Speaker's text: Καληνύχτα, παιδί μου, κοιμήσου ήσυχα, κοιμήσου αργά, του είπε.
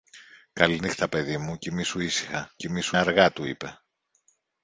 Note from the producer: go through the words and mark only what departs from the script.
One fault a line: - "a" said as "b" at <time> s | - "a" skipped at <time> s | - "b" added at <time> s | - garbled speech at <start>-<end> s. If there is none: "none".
none